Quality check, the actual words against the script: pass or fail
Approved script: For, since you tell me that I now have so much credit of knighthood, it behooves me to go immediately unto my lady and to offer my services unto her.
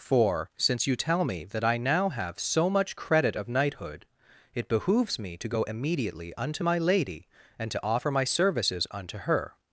pass